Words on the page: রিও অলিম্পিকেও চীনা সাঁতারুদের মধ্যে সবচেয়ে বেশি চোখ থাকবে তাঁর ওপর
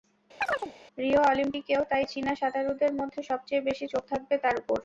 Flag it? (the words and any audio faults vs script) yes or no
yes